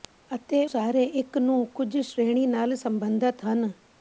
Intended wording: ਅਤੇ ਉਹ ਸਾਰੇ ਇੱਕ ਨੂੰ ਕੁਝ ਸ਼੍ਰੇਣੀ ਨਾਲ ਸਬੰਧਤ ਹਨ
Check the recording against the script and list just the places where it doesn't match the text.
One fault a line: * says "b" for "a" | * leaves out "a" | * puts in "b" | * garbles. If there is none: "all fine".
* leaves out "ਉਹ"